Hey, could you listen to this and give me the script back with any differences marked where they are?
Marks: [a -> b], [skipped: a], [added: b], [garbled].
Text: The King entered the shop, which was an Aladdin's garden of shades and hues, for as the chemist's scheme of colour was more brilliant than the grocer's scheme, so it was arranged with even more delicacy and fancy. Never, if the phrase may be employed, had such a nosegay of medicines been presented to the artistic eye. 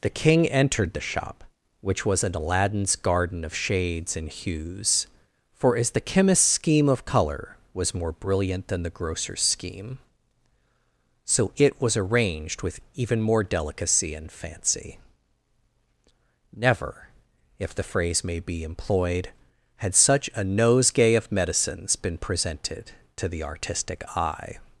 The King entered the shop, which was an Aladdin's garden of shades and hues, for as the chemist's scheme of colour was more brilliant than the grocer's scheme, so it was arranged with even more delicacy and fancy. Never, if the phrase may be employed, had such a nosegay of medicines been presented to the artistic eye.